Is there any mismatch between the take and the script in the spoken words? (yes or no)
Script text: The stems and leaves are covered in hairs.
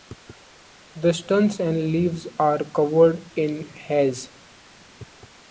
no